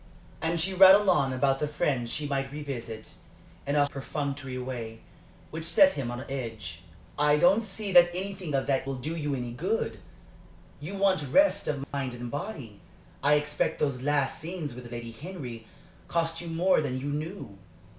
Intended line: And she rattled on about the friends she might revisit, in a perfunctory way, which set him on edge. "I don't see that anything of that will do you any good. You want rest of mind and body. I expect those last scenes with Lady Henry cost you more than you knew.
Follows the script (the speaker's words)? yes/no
yes